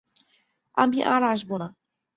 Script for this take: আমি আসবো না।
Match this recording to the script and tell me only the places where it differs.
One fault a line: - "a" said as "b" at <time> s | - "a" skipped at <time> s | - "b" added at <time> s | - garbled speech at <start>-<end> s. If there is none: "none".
- "আর" added at 1.1 s